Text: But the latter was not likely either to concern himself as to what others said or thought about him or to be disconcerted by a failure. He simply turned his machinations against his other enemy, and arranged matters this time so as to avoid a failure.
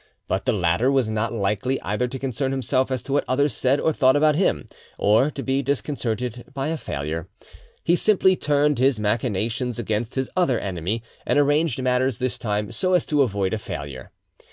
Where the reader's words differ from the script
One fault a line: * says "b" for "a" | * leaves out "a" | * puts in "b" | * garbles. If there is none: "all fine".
all fine